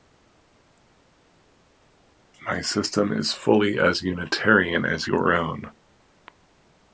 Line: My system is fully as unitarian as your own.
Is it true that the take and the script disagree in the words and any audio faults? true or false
false